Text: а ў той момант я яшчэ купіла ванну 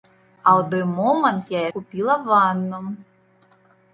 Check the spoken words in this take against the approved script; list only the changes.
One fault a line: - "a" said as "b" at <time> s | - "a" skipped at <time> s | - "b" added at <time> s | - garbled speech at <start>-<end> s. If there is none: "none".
- "яшчэ" skipped at 1.6 s